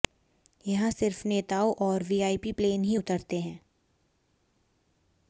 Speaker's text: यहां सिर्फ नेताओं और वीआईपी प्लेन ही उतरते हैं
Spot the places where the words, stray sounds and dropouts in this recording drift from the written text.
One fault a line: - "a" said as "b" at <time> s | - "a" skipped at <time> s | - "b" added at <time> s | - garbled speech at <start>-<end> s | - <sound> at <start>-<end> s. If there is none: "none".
none